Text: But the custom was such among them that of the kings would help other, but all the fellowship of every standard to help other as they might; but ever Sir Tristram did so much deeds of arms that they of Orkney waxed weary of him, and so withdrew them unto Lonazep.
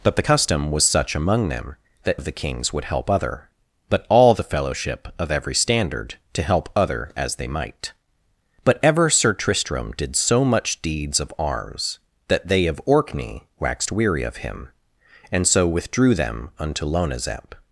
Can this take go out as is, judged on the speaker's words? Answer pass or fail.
pass